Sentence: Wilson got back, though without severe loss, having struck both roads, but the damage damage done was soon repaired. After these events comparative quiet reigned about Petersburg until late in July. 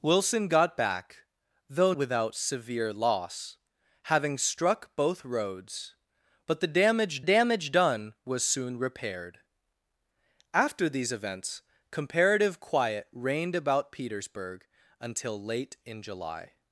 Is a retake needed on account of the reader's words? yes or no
no